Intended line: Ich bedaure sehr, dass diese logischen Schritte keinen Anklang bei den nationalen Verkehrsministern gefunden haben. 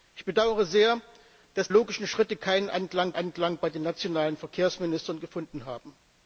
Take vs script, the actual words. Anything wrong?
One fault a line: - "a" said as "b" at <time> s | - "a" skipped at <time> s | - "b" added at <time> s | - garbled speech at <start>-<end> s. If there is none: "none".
- "diese" skipped at 1.7 s
- "Anklang" added at 3.1 s